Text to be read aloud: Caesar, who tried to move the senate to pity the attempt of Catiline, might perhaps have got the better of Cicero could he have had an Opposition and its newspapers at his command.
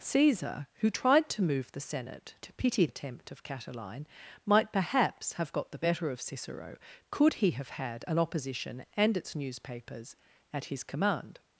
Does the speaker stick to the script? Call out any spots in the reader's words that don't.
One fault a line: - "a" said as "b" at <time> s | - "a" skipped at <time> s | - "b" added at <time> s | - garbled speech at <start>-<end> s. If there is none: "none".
- "the" skipped at 2.9 s